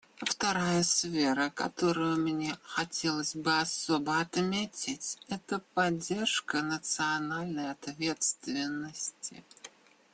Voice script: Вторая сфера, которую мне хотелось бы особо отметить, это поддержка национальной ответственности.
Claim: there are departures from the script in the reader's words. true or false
false